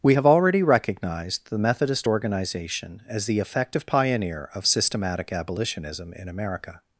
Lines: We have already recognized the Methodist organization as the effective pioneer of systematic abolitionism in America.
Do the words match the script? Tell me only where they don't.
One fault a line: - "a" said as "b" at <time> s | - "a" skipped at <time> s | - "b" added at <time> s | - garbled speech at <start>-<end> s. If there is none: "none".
none